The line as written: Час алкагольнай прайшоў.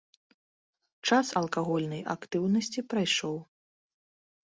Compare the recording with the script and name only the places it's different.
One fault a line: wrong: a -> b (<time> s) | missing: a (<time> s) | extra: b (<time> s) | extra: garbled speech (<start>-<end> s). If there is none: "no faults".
extra: актыўнасці (2.1 s)